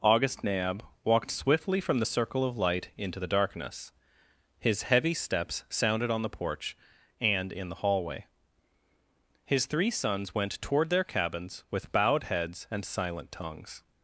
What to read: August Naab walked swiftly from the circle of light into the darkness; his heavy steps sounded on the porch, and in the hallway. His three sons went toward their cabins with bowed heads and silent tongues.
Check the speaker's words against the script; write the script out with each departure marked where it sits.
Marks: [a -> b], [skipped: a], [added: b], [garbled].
August Naab walked swiftly from the circle of light into the darkness; his heavy steps sounded on the porch, and in the hallway. His three sons went toward their cabins with bowed heads and silent tongues.